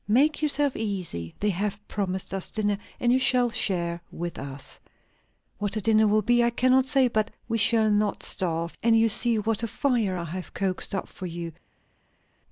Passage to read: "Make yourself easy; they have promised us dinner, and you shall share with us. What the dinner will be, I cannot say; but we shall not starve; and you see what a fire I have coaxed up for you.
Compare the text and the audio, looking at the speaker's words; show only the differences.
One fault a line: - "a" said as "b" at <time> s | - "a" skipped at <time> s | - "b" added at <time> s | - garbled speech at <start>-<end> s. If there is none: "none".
none